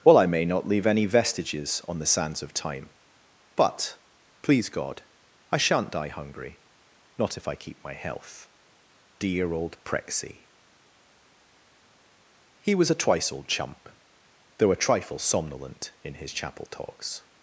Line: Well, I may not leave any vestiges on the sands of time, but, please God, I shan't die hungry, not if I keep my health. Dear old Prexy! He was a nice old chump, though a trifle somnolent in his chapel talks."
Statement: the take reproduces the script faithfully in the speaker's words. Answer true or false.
false